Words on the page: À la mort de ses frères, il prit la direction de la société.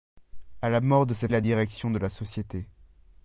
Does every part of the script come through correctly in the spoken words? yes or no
no